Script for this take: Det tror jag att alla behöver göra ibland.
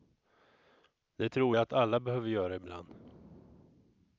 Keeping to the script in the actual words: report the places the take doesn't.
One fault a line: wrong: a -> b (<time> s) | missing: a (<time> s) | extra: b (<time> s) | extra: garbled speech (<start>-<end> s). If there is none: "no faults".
no faults